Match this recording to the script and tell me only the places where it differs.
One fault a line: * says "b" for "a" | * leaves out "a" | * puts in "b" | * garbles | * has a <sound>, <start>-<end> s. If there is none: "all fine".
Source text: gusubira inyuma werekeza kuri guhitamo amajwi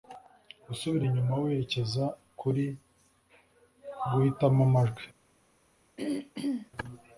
* has a throat clearing, 6.0-6.7 s